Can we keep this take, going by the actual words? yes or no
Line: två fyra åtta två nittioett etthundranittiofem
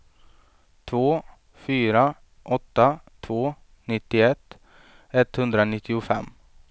yes